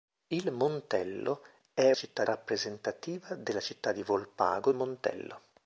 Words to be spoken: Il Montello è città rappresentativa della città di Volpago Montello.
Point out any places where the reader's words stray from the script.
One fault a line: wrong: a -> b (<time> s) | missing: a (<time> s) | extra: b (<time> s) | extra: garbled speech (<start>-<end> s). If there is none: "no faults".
no faults